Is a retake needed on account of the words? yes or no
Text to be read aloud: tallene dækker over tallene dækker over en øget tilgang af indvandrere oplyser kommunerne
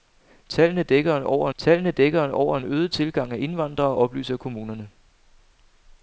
no